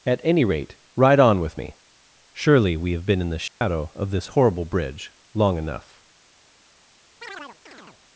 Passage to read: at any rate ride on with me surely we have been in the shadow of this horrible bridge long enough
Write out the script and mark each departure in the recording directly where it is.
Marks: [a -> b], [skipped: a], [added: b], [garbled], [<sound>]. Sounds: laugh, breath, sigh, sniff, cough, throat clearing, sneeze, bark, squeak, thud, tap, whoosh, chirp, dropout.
at any rate ride on with me surely we have been in the shadow [dropout] of this horrible bridge long enough [chirp]